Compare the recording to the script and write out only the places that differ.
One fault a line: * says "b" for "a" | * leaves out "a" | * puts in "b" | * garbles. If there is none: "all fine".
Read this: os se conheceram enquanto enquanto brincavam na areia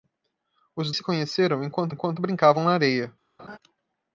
all fine